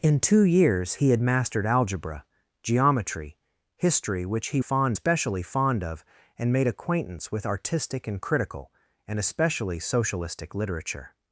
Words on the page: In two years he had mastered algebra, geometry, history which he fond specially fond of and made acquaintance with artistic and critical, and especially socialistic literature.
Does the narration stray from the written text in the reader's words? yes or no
no